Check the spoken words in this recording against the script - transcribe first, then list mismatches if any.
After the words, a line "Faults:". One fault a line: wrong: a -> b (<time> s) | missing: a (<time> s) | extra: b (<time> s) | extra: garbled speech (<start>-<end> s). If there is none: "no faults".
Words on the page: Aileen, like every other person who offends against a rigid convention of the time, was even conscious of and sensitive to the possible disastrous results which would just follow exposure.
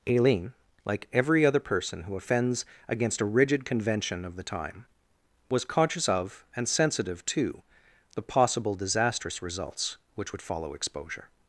Aileen, like every other person who offends against a rigid convention of the time, was conscious of and sensitive to the possible disastrous results which would follow exposure.
Faults:
missing: even (5.6 s)
missing: just (10.4 s)